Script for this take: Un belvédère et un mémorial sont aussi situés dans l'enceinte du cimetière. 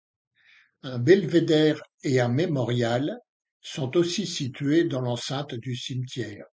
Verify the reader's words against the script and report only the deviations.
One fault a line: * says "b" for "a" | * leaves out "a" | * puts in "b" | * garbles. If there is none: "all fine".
all fine